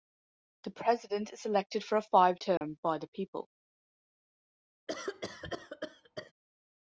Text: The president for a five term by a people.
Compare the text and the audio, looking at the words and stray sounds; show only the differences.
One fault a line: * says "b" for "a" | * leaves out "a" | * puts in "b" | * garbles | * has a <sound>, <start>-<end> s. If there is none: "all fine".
* puts in "is elected"
* has a dropout, 2.6-2.6 s
* says "the" for "a"
* has a cough, 4.9-6.3 s